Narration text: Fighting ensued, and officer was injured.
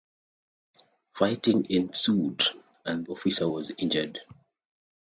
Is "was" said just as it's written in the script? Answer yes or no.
yes